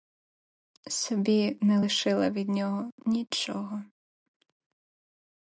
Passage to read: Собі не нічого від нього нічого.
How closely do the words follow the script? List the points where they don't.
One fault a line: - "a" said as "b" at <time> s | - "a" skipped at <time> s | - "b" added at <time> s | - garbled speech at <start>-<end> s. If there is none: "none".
- "нічого" said as "лишила" at 1.8 s